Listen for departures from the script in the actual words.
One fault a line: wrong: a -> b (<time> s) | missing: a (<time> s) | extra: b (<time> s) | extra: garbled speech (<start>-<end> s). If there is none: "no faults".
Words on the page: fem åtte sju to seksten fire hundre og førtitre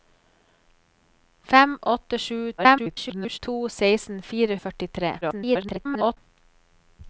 extra: garbled speech (2.6-3.4 s)
missing: hundre (4.6 s)
extra: garbled speech (5.2-6.2 s)